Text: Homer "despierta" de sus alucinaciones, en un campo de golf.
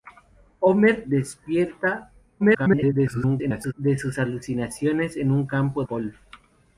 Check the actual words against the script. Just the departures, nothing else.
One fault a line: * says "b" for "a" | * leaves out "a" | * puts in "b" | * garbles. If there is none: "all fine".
* garbles
* leaves out "de"